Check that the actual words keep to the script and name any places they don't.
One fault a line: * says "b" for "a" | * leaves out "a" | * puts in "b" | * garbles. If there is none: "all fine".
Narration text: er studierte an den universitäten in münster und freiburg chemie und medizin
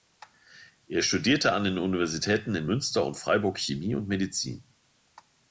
all fine